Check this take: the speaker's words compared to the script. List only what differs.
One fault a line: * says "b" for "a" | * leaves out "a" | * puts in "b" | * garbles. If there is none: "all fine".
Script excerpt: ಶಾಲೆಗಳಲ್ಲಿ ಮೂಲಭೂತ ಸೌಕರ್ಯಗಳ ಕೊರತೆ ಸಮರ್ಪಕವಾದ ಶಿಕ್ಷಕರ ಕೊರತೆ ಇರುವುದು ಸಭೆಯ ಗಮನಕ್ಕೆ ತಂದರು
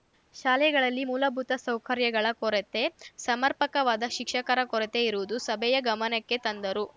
all fine